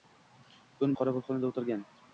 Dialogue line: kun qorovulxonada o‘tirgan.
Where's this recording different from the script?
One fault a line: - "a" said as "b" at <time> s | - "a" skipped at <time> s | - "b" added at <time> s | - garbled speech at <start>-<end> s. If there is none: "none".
none